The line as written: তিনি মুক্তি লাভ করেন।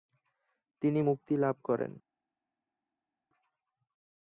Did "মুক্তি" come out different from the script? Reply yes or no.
no